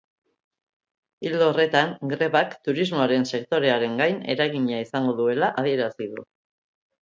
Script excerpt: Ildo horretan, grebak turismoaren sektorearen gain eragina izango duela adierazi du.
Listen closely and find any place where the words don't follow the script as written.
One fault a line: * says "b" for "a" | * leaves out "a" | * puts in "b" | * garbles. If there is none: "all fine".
all fine